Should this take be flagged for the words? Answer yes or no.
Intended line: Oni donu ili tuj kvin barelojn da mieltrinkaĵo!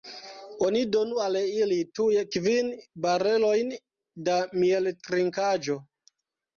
yes